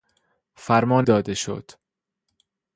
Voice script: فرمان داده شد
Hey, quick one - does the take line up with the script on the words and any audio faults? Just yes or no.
yes